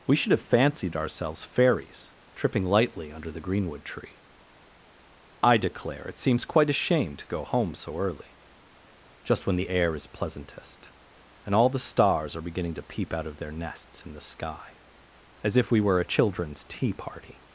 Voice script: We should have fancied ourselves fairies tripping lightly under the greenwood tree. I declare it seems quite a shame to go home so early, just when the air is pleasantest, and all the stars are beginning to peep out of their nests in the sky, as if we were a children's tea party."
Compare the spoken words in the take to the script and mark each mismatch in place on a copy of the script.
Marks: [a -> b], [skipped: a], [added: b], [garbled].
We should have fancied ourselves fairies tripping lightly under the greenwood tree. I declare it seems quite a shame to go home so early, just when the air is pleasantest, and all the stars are beginning to peep out of their nests in the sky, as if we were a children's tea party."